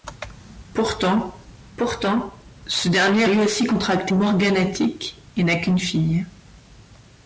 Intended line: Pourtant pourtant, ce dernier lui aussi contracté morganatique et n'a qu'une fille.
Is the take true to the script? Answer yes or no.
yes